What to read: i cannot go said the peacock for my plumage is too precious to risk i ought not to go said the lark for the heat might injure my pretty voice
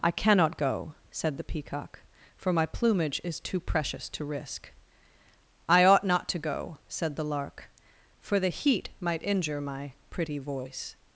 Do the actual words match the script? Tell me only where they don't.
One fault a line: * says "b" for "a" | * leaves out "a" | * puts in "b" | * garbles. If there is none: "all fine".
all fine